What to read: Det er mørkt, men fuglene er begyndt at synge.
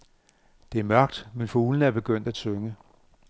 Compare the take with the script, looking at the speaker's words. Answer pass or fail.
pass